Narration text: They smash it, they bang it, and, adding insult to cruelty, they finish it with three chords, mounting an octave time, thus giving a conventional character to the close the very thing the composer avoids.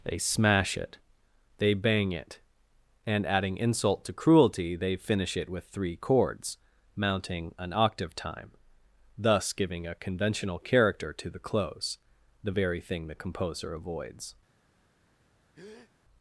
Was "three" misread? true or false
false